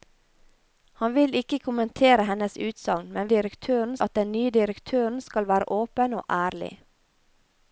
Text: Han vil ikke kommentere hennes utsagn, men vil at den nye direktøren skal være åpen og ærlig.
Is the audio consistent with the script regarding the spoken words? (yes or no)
no